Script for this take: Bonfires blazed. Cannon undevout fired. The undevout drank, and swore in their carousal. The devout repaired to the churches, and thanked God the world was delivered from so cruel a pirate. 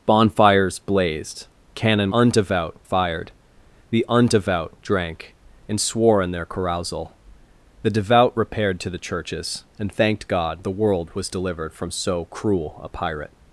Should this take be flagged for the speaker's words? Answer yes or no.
no